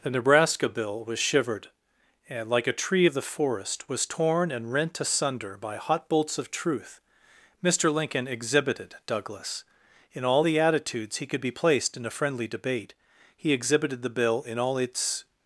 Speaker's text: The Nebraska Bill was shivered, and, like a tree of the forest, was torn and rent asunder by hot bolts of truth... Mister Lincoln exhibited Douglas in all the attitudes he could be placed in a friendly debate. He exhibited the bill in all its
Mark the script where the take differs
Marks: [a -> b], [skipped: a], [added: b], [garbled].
The Nebraska Bill was shivered, and, like a tree of the forest, was torn and rent asunder by hot bolts of truth... Mister Lincoln exhibited Douglas in all the attitudes he could be placed in a friendly debate. He exhibited the bill in all its